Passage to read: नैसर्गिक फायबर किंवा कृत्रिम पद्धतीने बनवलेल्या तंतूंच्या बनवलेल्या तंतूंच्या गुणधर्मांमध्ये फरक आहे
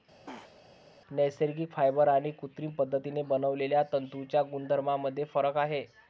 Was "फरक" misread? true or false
false